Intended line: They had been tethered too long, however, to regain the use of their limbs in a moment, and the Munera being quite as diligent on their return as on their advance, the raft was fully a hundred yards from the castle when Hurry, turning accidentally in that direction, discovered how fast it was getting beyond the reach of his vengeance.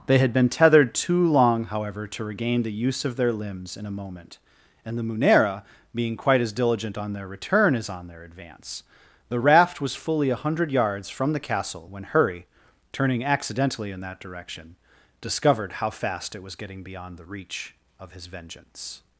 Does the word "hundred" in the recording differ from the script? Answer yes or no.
no